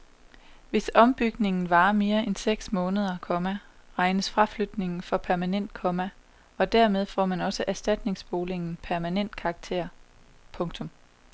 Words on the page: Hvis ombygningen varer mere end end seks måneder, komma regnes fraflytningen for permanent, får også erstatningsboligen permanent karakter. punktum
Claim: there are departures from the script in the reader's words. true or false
true